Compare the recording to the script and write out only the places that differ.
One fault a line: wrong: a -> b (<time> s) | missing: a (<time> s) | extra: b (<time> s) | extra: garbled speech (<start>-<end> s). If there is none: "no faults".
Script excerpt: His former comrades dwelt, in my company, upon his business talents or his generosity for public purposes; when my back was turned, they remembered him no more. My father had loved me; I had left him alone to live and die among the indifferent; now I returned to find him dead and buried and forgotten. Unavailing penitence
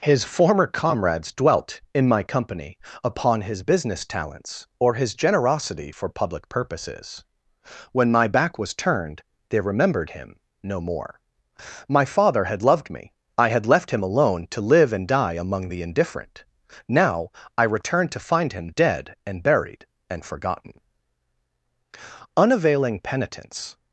no faults